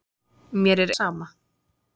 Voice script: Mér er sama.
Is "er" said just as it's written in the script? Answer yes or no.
yes